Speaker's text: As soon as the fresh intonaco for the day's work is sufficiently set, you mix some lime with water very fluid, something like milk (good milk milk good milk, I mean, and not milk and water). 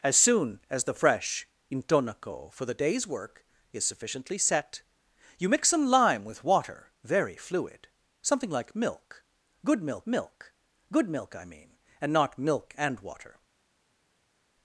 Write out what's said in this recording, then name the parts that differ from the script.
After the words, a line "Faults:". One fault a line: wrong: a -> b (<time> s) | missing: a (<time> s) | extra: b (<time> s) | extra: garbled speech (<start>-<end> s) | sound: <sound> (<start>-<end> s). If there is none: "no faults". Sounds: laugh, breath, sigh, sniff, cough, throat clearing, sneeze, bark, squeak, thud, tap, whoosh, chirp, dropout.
As soon as the fresh intonaco for the day's work is sufficiently set, you mix some lime with water very fluid, something like milk (good milk milk good milk, I mean, and not milk and water).
Faults:
no faults